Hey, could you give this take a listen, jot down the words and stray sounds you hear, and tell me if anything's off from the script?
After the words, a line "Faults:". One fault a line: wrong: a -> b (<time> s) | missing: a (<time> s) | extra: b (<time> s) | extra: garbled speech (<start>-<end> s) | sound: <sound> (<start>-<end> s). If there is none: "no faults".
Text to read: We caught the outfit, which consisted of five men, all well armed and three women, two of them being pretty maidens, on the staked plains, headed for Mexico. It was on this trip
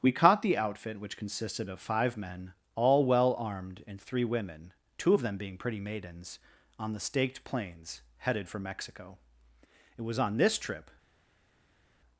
We caught the outfit, which consisted of five men, all well armed and three women, two of them being pretty maidens, on the staked plains, headed for Mexico. It was on this trip
Faults:
no faults